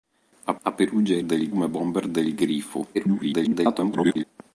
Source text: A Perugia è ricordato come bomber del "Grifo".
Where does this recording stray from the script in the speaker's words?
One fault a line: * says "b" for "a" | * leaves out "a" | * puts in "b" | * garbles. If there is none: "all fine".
* puts in "a"
* says "del" for "ricordato"
* garbles